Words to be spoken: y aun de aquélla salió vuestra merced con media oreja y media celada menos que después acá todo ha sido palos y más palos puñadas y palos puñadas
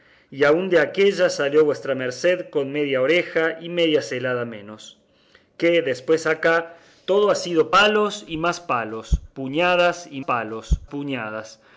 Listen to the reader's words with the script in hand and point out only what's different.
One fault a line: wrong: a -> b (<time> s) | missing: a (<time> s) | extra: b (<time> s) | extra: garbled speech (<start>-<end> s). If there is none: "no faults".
no faults